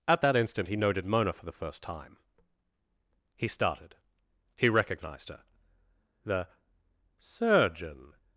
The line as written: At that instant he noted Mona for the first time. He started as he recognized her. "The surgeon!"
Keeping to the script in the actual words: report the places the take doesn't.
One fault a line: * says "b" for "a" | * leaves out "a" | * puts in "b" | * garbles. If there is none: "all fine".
* leaves out "as"